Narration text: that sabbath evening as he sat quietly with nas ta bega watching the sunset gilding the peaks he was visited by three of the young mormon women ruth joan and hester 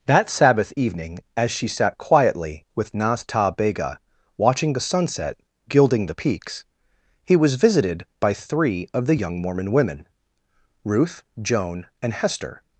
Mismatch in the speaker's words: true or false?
true